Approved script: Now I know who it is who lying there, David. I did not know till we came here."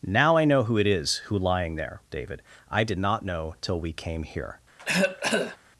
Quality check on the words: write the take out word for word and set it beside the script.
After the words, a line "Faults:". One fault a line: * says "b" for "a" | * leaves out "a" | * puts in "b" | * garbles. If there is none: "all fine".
Now I know who it is who lying there, David. I did not know till we came here."
Faults:
all fine